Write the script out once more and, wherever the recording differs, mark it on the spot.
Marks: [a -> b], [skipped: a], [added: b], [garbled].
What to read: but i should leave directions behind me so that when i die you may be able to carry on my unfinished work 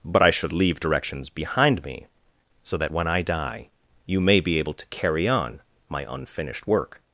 but i should leave directions behind me so that when i die you may be able to carry on my unfinished work